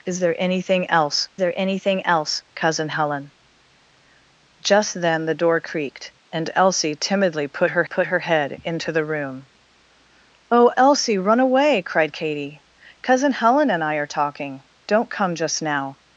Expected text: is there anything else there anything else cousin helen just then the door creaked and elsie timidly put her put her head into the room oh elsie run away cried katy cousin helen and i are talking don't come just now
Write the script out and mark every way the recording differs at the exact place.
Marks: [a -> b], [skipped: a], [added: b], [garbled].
is there anything else there anything else cousin helen just then the door creaked and elsie timidly put her put her head into the room oh elsie run away cried katy cousin helen and i are talking don't come just now